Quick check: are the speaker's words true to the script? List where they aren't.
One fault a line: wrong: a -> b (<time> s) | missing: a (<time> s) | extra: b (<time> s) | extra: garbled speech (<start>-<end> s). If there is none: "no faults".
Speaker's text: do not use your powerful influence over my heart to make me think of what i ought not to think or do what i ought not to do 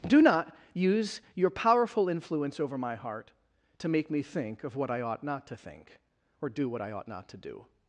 no faults